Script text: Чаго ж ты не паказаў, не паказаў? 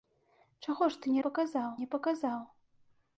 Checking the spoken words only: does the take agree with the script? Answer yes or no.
yes